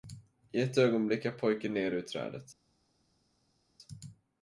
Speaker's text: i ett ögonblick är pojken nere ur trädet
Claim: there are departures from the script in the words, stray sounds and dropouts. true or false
false